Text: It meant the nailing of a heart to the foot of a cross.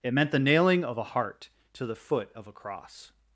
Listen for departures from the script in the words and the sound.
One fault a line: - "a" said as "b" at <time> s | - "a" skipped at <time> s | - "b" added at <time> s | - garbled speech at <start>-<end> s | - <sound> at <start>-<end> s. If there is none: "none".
none